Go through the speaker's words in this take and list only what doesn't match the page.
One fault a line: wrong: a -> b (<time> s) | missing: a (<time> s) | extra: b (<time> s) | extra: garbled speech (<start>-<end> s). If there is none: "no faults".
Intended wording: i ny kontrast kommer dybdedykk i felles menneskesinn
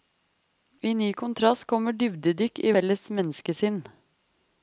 no faults